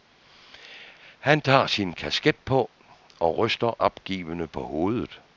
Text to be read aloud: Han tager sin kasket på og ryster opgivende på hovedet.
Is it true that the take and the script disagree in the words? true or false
false